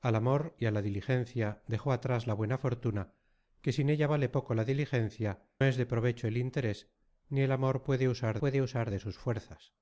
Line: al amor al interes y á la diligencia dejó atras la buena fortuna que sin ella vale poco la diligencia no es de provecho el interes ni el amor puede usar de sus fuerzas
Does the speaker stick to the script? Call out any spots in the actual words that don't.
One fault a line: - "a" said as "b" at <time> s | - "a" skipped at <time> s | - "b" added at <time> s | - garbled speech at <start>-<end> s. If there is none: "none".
- "al interes" skipped at 0.6 s
- "no" skipped at 5.5 s
- "puede usar" added at 8.4 s